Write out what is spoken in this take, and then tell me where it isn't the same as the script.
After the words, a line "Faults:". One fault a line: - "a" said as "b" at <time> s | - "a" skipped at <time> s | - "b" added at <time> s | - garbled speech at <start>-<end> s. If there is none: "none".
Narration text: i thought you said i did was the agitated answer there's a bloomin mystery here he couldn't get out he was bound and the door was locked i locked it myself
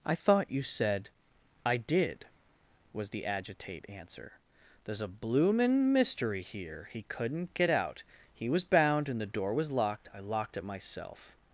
i thought you said i did was the agitate answer there's a bloomin mystery here he couldn't get out he was bound and the door was locked i locked it myself
Faults:
- "agitated" said as "agitate" at 3.2 s